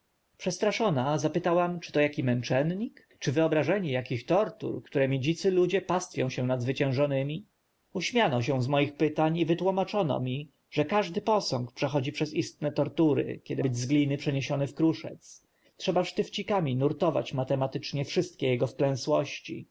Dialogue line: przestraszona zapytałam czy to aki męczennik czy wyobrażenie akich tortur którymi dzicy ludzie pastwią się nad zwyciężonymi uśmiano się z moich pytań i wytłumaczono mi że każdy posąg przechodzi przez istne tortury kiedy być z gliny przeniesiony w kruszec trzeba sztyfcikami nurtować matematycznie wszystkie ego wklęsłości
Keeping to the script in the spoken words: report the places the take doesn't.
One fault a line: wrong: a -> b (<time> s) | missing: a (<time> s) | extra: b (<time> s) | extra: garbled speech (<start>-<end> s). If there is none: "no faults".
no faults